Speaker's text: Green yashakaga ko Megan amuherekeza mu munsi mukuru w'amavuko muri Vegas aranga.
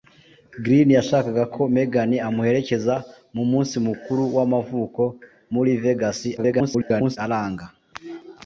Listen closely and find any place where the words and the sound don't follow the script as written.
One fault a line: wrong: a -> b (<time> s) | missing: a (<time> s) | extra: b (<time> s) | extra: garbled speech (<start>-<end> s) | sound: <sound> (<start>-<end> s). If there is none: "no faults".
extra: garbled speech (6.4-7.2 s)